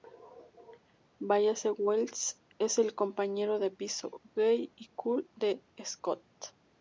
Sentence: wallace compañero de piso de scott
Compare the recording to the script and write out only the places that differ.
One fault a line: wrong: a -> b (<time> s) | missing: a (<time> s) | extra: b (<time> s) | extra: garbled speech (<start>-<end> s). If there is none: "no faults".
extra: wells es el (1.8 s)
extra: gay y cool (4.3 s)